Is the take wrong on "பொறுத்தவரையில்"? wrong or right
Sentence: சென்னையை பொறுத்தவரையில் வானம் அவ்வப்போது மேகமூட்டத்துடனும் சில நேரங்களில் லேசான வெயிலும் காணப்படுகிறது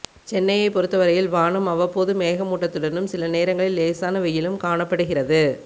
right